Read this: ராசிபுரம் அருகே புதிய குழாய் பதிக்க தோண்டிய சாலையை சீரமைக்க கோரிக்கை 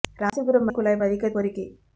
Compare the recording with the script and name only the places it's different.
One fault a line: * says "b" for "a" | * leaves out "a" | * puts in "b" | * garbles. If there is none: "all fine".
* leaves out "அருகே புதிய"
* leaves out "தோண்டிய சாலையை சீரமைக்க"